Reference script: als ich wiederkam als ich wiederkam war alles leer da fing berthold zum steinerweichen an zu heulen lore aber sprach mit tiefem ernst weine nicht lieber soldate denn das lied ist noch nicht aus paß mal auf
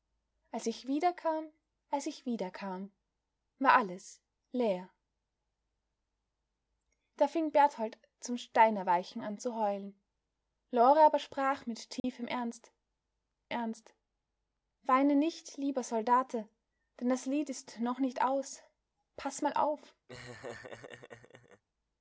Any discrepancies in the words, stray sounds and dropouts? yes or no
yes